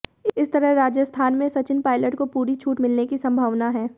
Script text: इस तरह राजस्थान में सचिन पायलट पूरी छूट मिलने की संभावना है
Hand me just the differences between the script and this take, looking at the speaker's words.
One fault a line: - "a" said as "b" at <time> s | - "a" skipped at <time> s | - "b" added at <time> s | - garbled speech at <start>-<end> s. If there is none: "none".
- "को" added at 2.1 s